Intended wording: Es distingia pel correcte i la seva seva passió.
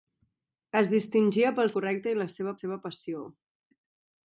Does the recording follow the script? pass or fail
pass